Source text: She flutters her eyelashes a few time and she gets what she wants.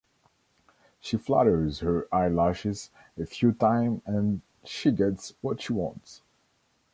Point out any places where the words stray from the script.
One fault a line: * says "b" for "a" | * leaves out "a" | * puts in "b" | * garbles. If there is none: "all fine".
all fine